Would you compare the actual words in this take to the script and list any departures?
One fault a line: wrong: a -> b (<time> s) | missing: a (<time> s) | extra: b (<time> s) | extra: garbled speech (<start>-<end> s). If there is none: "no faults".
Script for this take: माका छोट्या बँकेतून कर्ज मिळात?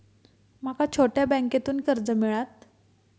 no faults